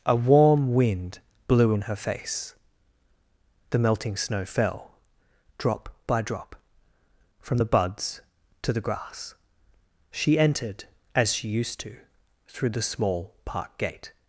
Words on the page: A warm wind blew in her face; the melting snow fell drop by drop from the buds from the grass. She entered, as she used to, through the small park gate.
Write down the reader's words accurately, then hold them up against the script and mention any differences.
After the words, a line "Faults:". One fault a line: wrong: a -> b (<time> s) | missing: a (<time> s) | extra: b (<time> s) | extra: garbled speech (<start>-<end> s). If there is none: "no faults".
A warm wind blew in her face; the melting snow fell drop by drop from the buds to the grass. She entered, as she used to, through the small park gate.
Faults:
wrong: from -> to (8.6 s)